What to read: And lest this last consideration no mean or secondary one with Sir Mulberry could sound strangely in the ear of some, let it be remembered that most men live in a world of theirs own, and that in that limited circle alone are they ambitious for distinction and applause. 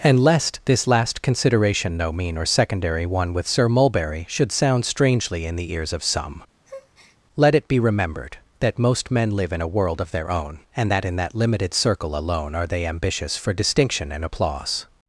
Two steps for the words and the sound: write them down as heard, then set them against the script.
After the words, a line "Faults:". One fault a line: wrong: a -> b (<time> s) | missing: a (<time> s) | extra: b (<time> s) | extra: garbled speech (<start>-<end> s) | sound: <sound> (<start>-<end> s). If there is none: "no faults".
And lest this last consideration no mean or secondary one with Sir Mulberry should sound strangely in the ears of some, let it be remembered that most men live in a world of their own, and that in that limited circle alone are they ambitious for distinction and applause.
Faults:
wrong: could -> should (4.3 s)
wrong: ear -> ears (5.7 s)
sound: breath (6.6-7.2 s)
wrong: theirs -> their (10.1 s)